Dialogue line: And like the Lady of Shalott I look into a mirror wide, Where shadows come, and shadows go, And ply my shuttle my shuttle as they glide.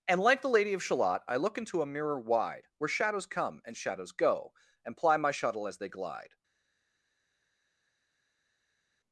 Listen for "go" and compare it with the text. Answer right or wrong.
right